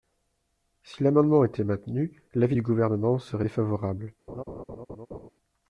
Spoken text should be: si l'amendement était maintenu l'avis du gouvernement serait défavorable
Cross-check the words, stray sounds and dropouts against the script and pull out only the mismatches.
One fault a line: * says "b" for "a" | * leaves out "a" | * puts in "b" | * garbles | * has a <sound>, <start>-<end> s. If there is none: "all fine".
* has a laugh, 4.3-5.3 s